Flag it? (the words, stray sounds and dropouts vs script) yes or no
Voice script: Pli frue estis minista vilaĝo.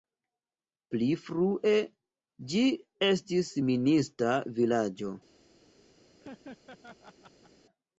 yes